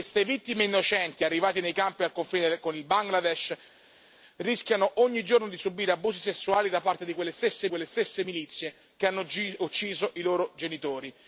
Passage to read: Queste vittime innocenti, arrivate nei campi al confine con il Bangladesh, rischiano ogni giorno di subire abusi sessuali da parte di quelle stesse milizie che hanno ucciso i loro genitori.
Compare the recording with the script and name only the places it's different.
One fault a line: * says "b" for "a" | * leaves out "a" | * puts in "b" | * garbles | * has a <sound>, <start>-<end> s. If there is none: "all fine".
* puts in "quelle stesse"